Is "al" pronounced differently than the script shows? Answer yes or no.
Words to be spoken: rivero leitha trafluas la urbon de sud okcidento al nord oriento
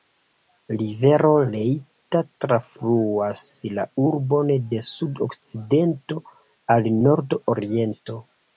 no